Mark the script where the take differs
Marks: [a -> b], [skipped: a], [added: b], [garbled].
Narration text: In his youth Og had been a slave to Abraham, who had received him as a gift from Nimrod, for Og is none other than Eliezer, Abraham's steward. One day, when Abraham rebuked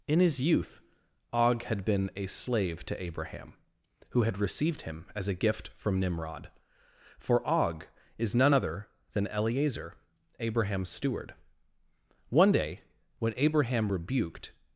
In his youth Og had been a slave to Abraham, who had received him as a gift from Nimrod, for Og is none other than Eliezer, Abraham's steward. One day, when Abraham rebuked